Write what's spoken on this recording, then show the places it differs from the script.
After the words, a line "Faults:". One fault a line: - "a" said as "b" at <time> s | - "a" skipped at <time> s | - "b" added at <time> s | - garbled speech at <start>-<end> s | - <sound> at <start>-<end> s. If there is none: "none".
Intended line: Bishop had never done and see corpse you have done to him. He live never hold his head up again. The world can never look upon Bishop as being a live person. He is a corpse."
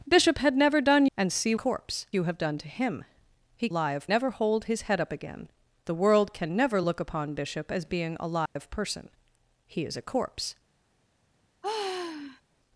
Bishop had never done and see corpse you have done to him. He live never hold his head up again. The world can never look upon Bishop as being a live person. He is a corpse."
Faults:
- dropout at 8.5-8.6 s
- sigh at 11.6-12.4 s